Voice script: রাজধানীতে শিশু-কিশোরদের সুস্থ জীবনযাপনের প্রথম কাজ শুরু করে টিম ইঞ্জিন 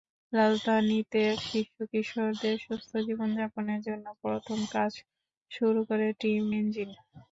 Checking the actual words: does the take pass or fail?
fail